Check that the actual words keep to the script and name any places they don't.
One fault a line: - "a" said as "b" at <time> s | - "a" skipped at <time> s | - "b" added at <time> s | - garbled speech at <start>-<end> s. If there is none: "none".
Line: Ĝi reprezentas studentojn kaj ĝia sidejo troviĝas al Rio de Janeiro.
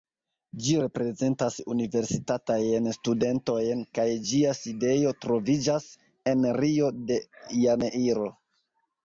- "universitatajn" added at 1.7 s
- "al" said as "en" at 6.3 s